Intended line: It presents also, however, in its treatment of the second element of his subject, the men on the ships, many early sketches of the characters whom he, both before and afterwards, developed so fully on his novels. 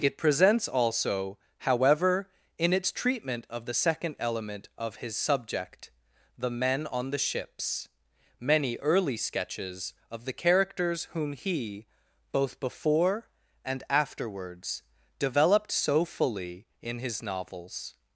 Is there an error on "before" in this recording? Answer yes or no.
no